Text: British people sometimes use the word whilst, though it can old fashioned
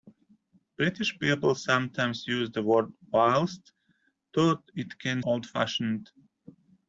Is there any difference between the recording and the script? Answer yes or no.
no